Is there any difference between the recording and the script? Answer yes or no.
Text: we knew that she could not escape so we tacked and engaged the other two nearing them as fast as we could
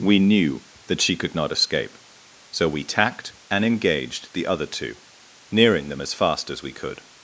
no